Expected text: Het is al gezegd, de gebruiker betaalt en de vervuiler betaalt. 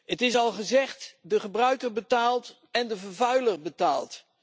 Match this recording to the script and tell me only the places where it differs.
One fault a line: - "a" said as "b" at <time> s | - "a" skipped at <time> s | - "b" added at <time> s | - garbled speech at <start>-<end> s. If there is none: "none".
none